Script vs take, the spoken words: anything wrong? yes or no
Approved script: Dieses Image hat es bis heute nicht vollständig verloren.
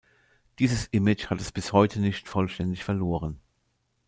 no